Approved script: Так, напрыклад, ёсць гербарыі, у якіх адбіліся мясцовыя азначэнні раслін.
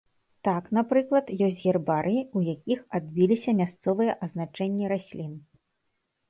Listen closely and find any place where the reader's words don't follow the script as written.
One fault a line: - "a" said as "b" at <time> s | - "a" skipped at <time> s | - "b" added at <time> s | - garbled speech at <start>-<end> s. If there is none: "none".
none